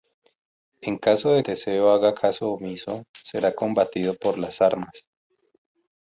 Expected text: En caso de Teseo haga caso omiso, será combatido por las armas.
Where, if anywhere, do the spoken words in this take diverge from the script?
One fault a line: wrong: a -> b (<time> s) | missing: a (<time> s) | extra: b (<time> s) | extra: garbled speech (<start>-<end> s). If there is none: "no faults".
no faults